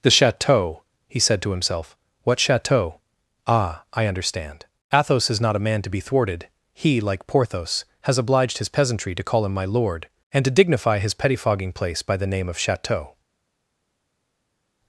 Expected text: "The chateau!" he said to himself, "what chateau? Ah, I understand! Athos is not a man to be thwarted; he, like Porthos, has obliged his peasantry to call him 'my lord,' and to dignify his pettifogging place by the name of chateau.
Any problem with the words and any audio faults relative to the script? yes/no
no